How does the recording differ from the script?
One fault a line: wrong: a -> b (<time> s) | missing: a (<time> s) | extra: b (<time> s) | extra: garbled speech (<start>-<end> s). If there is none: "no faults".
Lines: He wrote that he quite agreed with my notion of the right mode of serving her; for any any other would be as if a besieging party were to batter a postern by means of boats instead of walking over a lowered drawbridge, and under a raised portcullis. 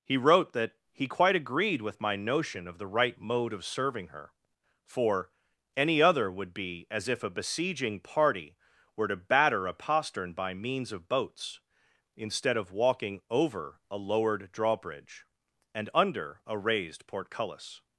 missing: any (6.0 s)